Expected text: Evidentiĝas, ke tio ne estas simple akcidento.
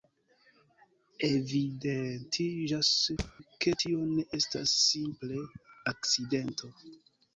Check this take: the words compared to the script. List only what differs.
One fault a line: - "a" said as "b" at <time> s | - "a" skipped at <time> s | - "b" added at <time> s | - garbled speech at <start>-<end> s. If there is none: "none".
none